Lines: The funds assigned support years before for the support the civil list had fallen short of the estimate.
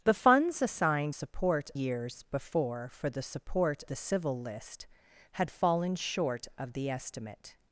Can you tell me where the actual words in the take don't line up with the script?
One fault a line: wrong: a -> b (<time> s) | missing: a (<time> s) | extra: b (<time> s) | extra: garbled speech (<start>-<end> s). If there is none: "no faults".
no faults